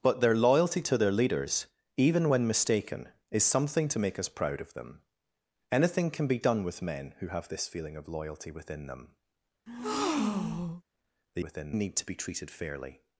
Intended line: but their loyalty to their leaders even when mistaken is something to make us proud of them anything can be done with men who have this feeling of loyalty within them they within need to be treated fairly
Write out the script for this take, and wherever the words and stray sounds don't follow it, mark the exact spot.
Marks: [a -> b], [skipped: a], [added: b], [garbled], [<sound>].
but their loyalty to their leaders even when mistaken is something to make us proud of them anything can be done with men who have this feeling of loyalty within them [breath] they within need to be treated fairly